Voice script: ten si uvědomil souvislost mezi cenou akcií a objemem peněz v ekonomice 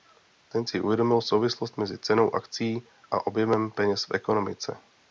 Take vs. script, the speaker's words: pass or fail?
pass